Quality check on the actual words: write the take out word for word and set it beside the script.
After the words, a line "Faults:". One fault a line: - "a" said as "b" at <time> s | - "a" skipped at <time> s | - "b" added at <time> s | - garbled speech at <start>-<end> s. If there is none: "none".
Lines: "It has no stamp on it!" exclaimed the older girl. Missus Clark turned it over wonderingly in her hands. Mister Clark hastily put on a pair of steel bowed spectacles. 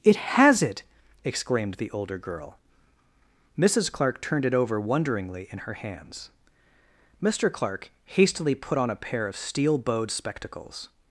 "It has it!" exclaimed the older girl. Missus Clark turned it over wonderingly in her hands. Mister Clark hastily put on a pair of steel bowed spectacles.
Faults:
- "no stamp on" skipped at 0.6 s